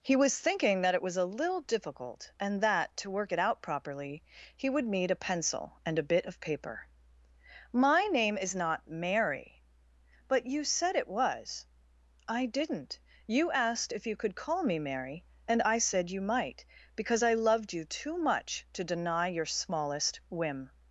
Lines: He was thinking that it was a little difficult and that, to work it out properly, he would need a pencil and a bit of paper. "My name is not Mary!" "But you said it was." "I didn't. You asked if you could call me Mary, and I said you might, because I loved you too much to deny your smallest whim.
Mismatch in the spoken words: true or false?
false